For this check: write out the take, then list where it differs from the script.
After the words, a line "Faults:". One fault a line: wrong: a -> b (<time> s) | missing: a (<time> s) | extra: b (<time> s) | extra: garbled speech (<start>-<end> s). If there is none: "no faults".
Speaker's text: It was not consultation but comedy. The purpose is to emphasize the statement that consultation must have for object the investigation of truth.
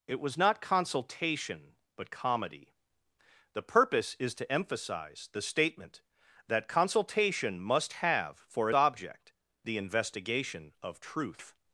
It was not consultation but comedy. The purpose is to emphasize the statement that consultation must have for object the investigation of truth.
Faults:
no faults